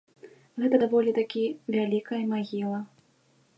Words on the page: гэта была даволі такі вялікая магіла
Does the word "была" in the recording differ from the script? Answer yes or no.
yes